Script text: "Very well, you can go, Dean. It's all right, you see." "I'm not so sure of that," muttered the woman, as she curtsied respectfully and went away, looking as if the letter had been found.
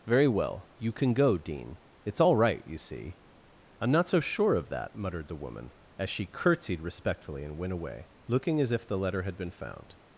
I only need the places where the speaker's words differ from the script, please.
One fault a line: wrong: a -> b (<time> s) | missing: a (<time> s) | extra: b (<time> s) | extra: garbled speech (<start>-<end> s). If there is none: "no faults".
no faults